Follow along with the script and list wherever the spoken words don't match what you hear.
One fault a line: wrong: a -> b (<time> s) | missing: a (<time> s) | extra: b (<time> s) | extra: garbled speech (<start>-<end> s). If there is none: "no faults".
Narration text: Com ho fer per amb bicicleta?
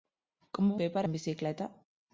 no faults